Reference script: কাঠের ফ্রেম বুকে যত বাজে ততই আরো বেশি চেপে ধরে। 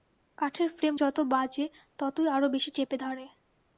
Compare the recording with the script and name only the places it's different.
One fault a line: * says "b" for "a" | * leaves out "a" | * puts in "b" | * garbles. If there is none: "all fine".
* leaves out "বুকে"